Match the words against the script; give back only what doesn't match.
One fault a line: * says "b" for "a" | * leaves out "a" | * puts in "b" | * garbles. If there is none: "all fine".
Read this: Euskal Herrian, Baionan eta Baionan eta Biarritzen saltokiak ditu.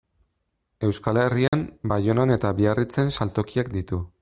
* leaves out "Baionan eta"